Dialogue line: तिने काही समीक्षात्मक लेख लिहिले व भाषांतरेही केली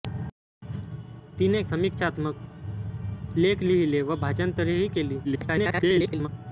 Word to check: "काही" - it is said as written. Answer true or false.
false